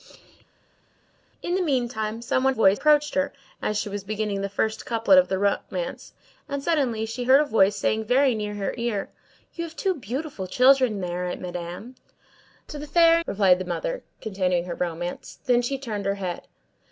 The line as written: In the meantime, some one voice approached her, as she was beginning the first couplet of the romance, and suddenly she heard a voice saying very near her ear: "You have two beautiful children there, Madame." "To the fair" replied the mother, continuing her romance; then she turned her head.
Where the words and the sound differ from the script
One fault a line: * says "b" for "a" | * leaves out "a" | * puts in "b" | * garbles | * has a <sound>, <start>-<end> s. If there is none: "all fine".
all fine